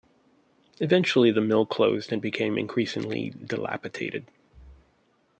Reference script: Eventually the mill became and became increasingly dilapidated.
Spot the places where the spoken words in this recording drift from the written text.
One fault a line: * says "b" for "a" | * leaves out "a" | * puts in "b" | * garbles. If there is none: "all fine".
* says "closed" for "became"